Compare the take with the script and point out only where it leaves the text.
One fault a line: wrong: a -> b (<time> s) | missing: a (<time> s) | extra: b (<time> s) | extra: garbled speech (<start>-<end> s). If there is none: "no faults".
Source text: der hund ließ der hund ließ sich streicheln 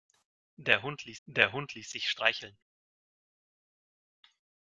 no faults